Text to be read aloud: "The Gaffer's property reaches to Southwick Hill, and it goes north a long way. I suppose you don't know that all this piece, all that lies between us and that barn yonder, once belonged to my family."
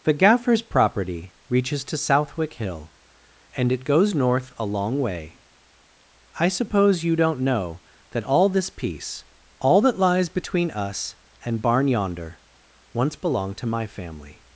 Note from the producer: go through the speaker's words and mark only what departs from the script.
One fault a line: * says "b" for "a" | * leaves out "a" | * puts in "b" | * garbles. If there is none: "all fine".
* leaves out "that"